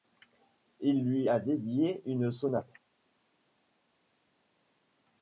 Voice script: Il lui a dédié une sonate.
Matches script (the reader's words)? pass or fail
pass